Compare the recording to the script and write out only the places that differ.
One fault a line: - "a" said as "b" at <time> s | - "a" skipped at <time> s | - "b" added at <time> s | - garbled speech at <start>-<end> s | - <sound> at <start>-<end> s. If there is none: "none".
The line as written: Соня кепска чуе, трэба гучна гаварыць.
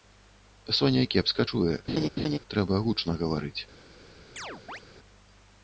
- laugh at 1.9-2.4 s
- chirp at 4.4-4.8 s